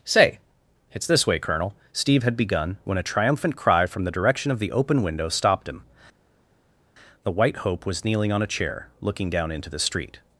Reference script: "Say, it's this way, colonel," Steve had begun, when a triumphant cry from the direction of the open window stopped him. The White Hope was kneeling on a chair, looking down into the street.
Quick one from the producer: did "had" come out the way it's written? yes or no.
yes